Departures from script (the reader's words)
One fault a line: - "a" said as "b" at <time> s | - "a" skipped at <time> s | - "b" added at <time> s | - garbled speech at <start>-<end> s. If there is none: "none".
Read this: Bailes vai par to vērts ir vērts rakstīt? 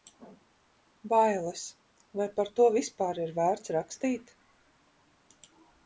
- "vērts" said as "vispār" at 2.8 s